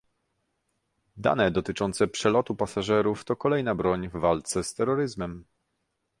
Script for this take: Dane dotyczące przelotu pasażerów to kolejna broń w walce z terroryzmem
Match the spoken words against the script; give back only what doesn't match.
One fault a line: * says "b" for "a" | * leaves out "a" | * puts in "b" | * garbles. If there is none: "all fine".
all fine